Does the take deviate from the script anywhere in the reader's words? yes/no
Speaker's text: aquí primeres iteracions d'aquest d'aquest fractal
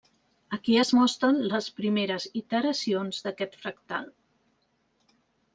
yes